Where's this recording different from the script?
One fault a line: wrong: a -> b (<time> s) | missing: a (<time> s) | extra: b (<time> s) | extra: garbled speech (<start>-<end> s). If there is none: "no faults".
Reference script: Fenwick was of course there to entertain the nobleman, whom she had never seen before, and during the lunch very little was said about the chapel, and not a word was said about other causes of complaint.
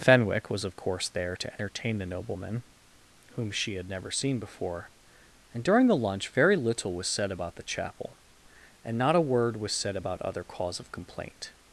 wrong: causes -> cause (10.5 s)